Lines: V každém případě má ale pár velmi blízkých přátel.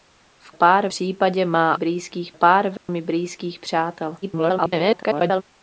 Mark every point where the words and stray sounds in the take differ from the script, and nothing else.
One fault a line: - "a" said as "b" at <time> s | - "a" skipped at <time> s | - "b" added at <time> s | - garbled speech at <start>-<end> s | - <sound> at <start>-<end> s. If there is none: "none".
- "každém" said as "pár" at 0.5 s
- "ale" said as "blízkých" at 1.7 s
- dropout at 2.8-2.9 s
- garbled speech at 4.2-5.4 s